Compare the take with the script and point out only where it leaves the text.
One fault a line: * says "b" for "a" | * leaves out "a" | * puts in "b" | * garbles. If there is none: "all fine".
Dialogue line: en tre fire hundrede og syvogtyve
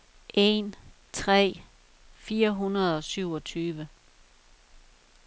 all fine